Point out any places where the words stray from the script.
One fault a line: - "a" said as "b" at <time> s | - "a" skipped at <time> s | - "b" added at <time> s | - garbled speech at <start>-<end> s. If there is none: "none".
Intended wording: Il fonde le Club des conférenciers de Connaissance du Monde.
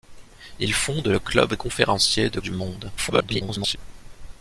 - "des" skipped at 1.5 s
- "Connaissance" skipped at 2.4 s
- garbled speech at 3.0-3.8 s